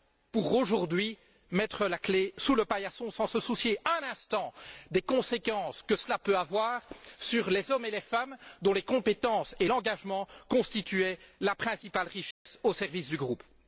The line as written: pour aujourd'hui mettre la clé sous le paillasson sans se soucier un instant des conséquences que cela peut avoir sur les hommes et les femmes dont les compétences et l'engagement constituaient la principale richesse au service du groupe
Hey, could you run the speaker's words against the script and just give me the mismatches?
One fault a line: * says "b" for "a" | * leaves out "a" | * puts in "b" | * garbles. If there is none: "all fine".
all fine